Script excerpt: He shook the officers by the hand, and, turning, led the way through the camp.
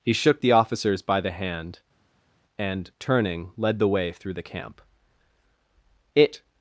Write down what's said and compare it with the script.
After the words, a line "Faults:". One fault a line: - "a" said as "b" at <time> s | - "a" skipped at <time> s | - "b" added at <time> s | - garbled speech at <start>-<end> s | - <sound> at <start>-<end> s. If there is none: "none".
He shook the officers by the hand, and, turning, led the way through the camp. It
Faults:
- "It" added at 6.1 s